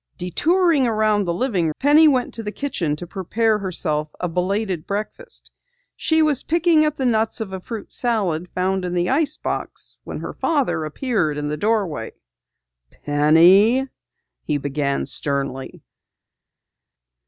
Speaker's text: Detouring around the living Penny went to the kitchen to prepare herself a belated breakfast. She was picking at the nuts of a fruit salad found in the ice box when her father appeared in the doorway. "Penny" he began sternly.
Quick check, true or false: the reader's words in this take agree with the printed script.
true